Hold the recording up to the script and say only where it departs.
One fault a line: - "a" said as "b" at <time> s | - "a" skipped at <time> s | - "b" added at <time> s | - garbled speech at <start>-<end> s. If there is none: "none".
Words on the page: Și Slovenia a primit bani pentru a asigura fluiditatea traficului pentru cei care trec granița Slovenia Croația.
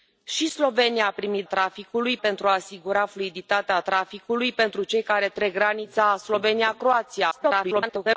- "bani" said as "traficului" at 1.4 s
- garbled speech at 7.3-8.2 s